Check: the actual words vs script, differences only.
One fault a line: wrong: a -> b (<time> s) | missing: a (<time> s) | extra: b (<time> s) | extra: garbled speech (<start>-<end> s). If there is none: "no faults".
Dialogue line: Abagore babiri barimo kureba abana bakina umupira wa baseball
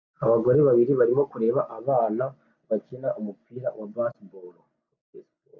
no faults